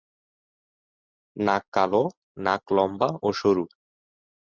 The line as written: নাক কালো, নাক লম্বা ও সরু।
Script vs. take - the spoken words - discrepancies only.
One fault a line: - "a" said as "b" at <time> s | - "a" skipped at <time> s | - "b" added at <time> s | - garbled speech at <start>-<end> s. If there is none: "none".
none